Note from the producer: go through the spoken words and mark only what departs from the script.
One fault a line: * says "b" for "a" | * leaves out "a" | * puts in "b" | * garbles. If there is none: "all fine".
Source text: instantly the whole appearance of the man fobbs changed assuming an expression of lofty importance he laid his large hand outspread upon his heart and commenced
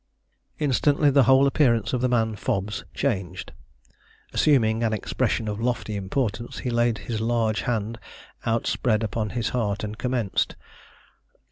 all fine